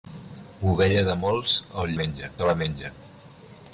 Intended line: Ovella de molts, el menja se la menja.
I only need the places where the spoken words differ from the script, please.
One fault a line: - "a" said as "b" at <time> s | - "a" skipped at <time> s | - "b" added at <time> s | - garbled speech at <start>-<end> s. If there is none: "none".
none